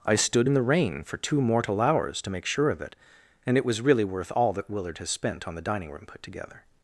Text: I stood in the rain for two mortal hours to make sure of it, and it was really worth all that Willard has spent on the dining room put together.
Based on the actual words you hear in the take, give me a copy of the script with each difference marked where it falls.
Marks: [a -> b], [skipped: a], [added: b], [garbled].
I stood in the rain for two mortal hours to make sure of it, and it was really worth all that Willard has spent on the dining room put together.